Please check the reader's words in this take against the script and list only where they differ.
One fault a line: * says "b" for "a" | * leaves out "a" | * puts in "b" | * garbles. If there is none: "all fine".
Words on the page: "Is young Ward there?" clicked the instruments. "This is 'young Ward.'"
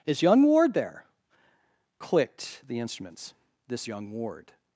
* leaves out "is"